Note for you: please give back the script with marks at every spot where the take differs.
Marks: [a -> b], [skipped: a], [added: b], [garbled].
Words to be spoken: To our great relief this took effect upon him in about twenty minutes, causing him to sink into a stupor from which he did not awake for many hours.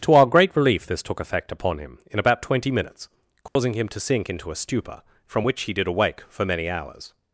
To our great relief this took effect upon him in about twenty minutes, causing him to sink into a stupor from which he did [skipped: not] awake for many hours.